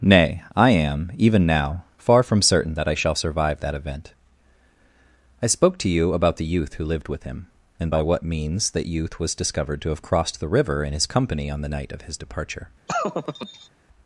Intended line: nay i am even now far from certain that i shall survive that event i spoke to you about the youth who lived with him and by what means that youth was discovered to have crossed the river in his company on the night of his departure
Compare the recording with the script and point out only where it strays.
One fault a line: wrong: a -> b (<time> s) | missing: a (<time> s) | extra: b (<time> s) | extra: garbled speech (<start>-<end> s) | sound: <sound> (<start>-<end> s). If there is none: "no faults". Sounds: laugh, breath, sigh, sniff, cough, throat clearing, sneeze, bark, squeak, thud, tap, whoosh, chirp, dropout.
sound: laugh (12.9-13.7 s)